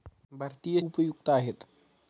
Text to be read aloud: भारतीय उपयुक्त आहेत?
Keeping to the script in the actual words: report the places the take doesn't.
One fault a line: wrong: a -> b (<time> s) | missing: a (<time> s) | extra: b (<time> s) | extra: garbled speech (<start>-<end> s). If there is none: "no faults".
no faults